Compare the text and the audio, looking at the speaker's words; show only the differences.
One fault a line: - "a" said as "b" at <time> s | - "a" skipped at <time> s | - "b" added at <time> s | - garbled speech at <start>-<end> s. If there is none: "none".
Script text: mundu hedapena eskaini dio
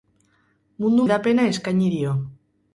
none